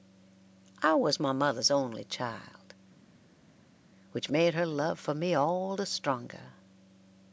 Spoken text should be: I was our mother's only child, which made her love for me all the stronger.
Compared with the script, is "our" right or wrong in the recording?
wrong